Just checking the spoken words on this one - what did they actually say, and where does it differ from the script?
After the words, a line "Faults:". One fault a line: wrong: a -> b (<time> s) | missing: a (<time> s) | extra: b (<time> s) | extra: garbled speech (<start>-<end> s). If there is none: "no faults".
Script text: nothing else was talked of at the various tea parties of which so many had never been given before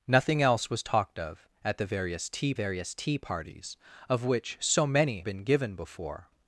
nothing else was talked of at the various tea various tea parties of which so many been given before
Faults:
extra: various tea (2.5 s)
missing: had never (5.2 s)